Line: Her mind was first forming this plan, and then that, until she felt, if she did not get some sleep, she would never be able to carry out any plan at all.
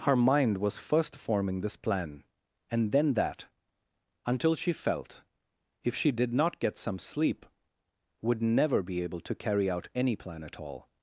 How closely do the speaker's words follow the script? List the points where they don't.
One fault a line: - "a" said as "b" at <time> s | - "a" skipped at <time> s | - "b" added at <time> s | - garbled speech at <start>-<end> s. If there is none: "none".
- "she" skipped at 7.4 s